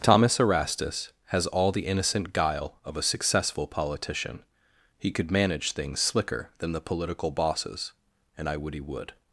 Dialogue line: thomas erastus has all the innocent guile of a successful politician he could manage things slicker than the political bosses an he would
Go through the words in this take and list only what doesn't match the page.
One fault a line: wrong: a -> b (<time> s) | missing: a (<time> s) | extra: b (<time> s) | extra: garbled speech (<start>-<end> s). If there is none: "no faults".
wrong: an -> and i would (8.4 s)